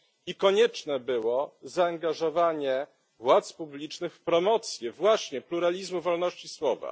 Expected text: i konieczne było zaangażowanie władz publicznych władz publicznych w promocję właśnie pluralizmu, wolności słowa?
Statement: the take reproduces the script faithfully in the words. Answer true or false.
false